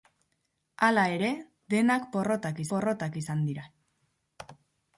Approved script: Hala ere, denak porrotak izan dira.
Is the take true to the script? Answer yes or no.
no